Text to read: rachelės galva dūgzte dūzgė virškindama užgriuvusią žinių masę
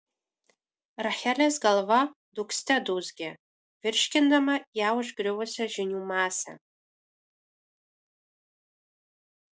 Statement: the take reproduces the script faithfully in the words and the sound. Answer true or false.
false